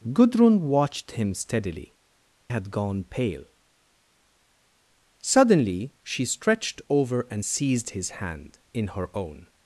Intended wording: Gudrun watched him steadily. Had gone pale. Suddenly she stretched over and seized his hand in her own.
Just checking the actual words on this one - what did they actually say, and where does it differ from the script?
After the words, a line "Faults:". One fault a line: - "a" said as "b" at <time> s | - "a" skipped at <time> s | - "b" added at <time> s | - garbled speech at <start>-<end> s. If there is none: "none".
Gudrun watched him steadily. Had gone pale. Suddenly she stretched over and seized his hand in her own.
Faults:
none